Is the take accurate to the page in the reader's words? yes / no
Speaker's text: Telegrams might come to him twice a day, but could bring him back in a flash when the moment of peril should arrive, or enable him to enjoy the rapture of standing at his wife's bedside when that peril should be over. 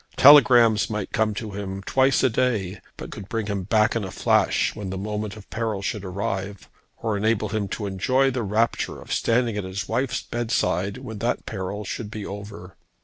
yes